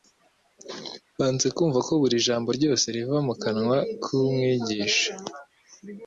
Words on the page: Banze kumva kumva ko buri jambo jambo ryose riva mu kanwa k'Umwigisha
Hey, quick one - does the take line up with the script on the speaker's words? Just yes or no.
no